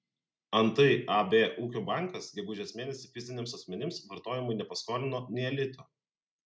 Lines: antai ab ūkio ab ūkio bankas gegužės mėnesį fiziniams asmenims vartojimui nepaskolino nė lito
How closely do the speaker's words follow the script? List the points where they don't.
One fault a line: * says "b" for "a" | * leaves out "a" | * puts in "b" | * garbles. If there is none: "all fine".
* leaves out "ab ūkio"